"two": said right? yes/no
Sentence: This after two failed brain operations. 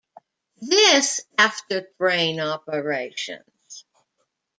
no